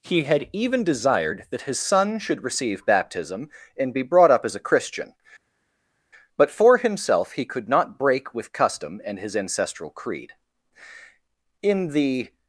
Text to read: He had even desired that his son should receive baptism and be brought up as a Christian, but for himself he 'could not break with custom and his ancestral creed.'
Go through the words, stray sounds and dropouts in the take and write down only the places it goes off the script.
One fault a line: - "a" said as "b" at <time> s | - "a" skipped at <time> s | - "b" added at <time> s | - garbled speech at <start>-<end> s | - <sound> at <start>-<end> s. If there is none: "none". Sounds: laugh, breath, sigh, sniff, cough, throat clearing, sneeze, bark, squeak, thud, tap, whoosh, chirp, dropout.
- "In the" added at 11.6 s